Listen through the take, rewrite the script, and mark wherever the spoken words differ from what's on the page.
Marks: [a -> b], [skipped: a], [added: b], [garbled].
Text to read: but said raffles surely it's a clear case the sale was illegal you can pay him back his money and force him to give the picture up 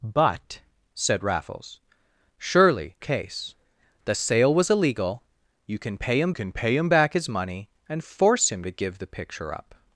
but said raffles surely [skipped: it's a clear] case the sale was illegal you can pay him [added: can pay him] back his money and force him to give the picture up